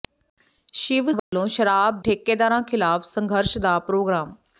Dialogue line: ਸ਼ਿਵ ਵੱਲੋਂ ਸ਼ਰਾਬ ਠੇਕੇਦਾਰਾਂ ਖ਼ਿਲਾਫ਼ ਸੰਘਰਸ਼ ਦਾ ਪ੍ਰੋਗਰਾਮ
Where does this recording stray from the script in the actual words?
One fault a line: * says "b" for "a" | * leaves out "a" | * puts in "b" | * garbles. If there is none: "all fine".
all fine